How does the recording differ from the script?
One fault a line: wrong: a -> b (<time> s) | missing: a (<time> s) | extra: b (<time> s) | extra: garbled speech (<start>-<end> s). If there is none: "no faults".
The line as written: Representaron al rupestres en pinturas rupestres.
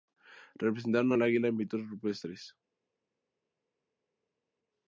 wrong: rupestres -> águila (1.2 s)